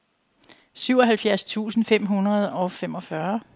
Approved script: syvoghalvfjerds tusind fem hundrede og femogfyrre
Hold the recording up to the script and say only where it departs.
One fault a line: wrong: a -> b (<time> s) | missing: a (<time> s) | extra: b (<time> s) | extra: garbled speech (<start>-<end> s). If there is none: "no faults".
no faults